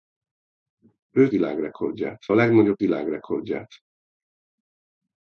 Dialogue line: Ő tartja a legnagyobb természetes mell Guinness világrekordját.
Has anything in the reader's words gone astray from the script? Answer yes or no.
yes